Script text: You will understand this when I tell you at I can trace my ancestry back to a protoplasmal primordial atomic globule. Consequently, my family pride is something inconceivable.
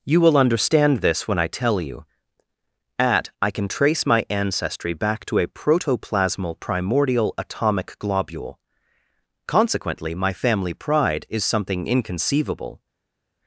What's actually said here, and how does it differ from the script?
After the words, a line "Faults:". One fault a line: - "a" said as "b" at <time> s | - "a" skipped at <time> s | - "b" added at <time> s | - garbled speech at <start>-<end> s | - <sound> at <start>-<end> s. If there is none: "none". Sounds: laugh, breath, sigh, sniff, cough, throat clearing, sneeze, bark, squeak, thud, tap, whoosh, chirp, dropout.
You will understand this when I tell you at I can trace my ancestry back to a protoplasmal primordial atomic globule. Consequently, my family pride is something inconceivable.
Faults:
none